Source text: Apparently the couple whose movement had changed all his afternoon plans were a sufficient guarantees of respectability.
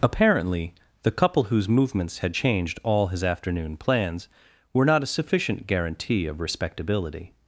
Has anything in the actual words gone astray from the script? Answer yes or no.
yes